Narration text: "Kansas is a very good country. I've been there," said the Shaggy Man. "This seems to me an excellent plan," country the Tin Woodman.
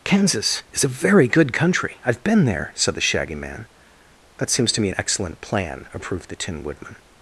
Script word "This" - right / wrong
wrong